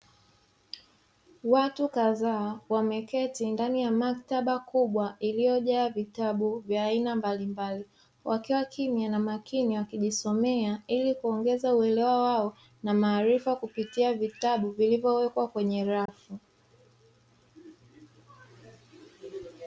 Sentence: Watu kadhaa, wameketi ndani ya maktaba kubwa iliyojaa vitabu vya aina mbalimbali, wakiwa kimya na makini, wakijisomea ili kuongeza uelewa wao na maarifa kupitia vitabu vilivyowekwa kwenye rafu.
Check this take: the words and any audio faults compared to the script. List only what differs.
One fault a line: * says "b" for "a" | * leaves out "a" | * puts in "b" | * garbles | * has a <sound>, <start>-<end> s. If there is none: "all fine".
* has a dropout, 16.1-16.1 s